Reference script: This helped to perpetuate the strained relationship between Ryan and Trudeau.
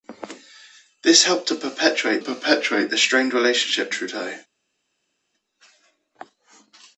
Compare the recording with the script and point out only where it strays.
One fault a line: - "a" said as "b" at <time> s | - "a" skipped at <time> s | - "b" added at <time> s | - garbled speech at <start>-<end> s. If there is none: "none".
- "perpetuate" added at 2.2 s
- "between Ryan and" skipped at 3.9 s